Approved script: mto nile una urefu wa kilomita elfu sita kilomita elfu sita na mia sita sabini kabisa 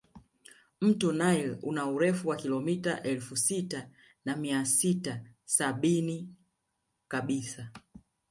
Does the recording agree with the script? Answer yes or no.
no